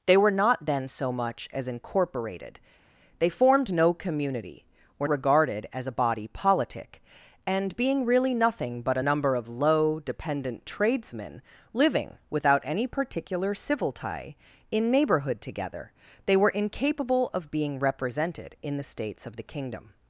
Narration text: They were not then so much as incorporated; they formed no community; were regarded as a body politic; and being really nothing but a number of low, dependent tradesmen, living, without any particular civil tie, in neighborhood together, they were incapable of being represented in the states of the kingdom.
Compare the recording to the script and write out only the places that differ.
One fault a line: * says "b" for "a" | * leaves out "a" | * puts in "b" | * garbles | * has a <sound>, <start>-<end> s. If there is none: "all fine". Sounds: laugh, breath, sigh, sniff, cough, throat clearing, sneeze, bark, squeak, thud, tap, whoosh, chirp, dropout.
all fine